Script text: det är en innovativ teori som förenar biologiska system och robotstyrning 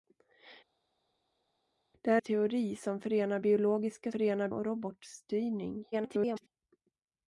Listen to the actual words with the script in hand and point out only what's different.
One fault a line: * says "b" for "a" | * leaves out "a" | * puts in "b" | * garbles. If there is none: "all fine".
* leaves out "en innovativ"
* says "förenar" for "system"
* garbles